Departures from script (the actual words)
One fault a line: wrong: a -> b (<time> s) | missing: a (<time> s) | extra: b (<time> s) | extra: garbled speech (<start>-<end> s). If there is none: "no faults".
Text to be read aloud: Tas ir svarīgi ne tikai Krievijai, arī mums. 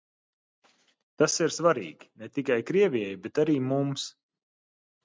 extra: bet (3.3 s)